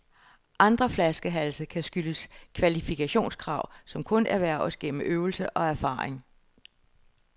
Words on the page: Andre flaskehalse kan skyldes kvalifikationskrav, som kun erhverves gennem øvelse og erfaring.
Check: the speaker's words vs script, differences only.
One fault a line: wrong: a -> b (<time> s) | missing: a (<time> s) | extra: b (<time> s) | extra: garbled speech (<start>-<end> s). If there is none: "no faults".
no faults